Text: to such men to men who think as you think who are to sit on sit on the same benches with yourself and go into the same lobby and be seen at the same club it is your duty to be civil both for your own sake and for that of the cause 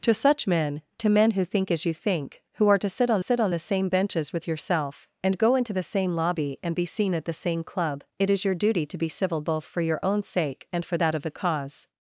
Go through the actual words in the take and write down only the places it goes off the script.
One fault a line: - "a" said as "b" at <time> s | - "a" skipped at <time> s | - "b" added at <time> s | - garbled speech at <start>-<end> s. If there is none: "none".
none